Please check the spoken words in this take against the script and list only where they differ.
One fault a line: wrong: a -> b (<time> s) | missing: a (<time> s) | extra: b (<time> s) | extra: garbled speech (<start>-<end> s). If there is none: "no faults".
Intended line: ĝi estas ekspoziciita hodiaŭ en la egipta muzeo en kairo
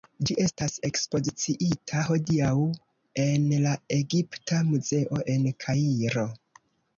no faults